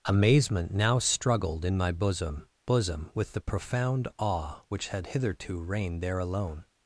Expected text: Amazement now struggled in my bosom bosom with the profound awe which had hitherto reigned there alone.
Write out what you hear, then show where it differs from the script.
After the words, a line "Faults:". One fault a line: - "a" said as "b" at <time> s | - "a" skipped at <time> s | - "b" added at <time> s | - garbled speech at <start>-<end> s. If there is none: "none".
Amazement now struggled in my bosom bosom with the profound awe which had hitherto reigned there alone.
Faults:
none